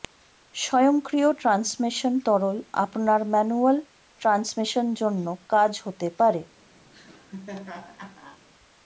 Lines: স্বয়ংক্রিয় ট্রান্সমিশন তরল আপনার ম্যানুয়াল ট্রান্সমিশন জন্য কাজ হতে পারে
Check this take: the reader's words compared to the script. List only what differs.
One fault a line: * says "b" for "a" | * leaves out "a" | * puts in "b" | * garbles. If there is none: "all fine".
all fine